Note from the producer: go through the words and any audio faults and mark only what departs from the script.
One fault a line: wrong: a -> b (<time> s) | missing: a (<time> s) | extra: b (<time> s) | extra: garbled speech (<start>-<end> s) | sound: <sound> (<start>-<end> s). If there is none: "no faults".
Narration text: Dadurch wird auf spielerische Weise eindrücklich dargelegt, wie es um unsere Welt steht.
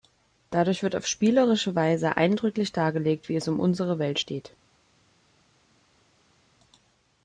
no faults